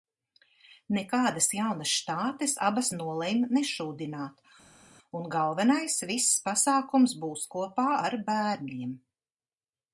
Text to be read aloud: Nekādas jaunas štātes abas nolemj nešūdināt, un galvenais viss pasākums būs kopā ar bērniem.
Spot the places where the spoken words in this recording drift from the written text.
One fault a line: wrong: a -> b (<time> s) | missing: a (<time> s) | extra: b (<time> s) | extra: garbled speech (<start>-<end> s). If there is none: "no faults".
no faults